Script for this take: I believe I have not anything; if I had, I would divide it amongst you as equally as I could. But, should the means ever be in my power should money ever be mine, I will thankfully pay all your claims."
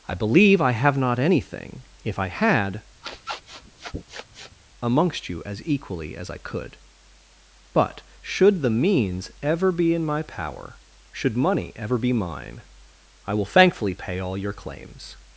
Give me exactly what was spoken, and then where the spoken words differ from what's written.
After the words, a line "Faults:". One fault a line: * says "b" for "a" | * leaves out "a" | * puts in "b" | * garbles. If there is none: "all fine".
I believe I have not anything; if I had, amongst you as equally as I could. But, should the means ever be in my power should money ever be mine, I will thankfully pay all your claims."
Faults:
* leaves out "I would divide it"